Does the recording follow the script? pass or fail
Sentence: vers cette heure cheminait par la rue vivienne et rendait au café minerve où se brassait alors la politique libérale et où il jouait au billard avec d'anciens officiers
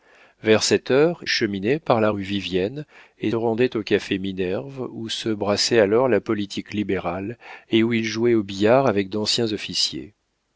pass